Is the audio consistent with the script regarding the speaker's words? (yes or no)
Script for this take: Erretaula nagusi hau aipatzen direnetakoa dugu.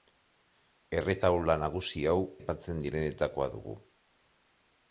yes